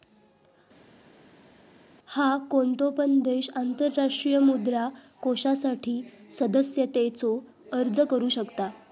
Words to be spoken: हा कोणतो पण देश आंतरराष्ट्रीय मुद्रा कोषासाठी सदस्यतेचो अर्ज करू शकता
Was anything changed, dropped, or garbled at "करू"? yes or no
no